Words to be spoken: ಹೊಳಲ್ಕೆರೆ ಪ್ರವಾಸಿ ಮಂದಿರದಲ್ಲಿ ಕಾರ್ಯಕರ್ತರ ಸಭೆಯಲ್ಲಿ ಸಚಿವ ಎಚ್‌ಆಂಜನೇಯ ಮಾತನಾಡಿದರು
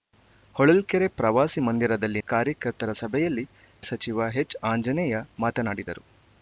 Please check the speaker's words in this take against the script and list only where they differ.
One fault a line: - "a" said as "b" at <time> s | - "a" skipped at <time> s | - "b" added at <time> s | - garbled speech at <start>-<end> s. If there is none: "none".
none